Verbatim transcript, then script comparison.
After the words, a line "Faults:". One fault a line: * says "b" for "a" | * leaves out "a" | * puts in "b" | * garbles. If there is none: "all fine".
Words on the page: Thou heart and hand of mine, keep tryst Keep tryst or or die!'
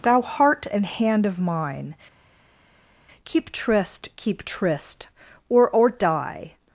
Thou heart and hand of mine, keep tryst Keep tryst or or die!'
Faults:
all fine